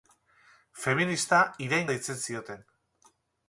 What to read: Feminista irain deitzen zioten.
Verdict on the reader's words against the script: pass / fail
pass